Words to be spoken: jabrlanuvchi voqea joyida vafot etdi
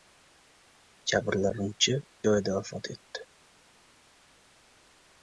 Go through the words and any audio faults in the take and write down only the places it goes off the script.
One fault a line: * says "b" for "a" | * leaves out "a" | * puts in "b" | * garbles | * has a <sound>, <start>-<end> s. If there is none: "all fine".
* leaves out "voqea"